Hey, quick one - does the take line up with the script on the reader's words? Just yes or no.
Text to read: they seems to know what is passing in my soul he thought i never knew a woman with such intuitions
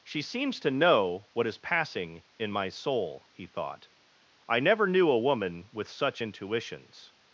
no